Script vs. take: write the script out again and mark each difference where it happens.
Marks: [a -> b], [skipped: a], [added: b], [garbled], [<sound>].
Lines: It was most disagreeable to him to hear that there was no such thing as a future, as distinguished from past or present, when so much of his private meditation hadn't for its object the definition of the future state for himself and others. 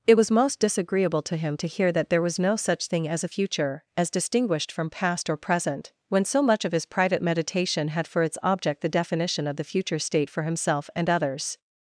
It was most disagreeable to him to hear that there was no such thing as a future, as distinguished from past or present, when so much of his private meditation [hadn't -> had] for its object the definition of the future state for himself and others.